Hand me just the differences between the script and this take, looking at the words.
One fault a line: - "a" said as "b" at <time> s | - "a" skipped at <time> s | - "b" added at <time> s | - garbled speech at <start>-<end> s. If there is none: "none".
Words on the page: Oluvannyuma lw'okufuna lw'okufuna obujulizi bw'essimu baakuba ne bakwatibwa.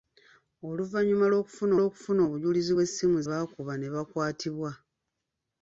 none